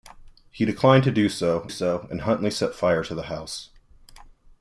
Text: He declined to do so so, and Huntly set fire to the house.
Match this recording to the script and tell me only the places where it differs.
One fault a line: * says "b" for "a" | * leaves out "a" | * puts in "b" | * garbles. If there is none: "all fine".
all fine